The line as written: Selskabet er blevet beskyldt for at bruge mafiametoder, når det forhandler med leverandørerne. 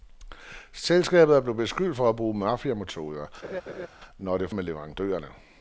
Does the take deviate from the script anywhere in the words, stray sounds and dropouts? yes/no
yes